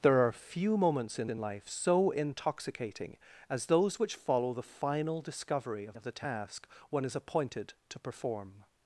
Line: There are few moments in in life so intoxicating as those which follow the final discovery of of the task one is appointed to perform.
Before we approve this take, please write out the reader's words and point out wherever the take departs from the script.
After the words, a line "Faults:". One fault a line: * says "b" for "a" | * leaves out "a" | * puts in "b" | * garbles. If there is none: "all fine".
There are few moments in in life so intoxicating as those which follow the final discovery of of the task one is appointed to perform.
Faults:
all fine